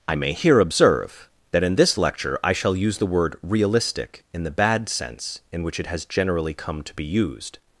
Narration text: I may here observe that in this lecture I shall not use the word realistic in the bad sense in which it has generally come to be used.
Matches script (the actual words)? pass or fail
fail